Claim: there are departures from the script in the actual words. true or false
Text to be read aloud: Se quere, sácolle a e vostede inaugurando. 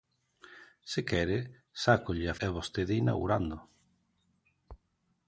false